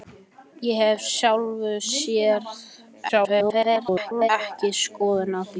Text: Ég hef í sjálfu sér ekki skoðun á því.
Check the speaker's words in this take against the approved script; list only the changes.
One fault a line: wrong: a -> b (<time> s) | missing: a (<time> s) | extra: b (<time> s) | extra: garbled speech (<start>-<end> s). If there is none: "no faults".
extra: garbled speech (3.1-4.3 s)